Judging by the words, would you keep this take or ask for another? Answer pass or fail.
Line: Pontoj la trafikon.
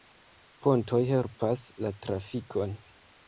fail